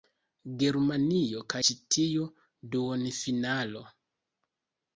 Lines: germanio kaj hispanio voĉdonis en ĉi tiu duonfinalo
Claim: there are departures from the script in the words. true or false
true